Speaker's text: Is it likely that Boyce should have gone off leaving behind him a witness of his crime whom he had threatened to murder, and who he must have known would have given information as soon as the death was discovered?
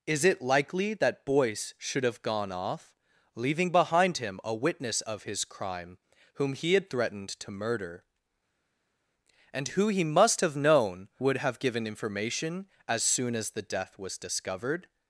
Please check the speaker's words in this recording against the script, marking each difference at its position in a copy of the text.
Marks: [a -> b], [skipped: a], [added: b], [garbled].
Is it likely that Boyce should have gone off leaving behind him a witness of his crime whom he had threatened to murder, and who he must have known would have given information as soon as the death was discovered?